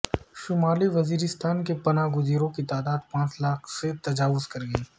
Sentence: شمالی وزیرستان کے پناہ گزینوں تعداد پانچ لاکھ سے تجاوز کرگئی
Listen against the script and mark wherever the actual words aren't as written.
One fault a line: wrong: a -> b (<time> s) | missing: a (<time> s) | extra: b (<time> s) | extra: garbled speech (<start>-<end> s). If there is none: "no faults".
extra: کی (2.5 s)